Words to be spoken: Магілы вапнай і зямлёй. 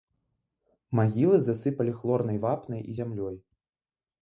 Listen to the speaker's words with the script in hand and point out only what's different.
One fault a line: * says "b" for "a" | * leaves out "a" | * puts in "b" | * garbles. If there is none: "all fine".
* puts in "засыпалі хлорнай"